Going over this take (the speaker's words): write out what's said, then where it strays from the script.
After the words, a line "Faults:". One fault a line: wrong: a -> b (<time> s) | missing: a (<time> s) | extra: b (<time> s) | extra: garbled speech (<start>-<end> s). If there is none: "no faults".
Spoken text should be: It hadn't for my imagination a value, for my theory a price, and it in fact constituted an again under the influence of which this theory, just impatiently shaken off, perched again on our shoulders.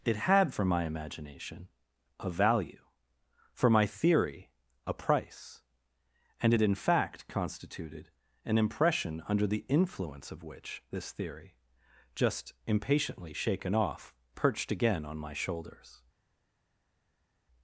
It had for my imagination a value, for my theory a price, and it in fact constituted an impression under the influence of which this theory, just impatiently shaken off, perched again on my shoulders.
Faults:
wrong: hadn't -> had (0.1 s)
wrong: again -> impression (8.6 s)
wrong: our -> my (15.2 s)